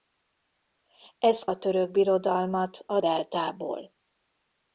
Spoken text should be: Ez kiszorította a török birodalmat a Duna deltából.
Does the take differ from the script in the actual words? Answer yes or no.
yes